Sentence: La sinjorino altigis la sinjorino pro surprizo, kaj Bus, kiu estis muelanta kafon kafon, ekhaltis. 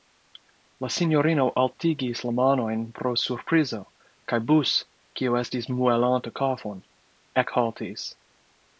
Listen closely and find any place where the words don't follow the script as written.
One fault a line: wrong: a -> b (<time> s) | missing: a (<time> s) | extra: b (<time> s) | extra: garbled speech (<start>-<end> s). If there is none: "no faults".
wrong: sinjorino -> manojn (2.4 s)
missing: kafon (6.8 s)